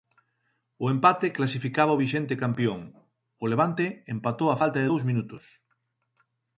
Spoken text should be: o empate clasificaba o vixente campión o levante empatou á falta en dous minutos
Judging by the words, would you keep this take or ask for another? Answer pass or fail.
fail